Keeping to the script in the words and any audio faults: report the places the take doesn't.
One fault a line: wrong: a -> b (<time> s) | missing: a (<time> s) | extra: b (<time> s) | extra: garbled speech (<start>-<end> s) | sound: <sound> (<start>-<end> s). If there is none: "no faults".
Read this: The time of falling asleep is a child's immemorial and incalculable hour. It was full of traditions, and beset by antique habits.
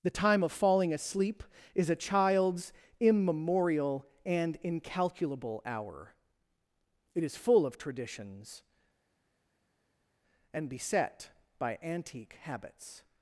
wrong: was -> is (7.2 s)